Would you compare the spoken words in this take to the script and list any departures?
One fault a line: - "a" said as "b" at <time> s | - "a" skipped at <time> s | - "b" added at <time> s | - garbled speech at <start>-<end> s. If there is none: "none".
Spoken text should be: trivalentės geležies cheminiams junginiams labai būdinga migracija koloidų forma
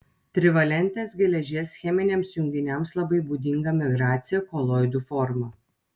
none